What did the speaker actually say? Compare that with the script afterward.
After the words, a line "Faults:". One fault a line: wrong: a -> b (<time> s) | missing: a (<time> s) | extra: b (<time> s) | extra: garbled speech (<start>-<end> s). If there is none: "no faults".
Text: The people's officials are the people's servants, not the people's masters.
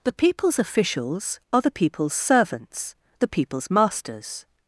The people's officials are the people's servants, the people's masters.
Faults:
missing: not (3.0 s)